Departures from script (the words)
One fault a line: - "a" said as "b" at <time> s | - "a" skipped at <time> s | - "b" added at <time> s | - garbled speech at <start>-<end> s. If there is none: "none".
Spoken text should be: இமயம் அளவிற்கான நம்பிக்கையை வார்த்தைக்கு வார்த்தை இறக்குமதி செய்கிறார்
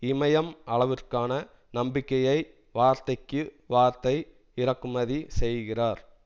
none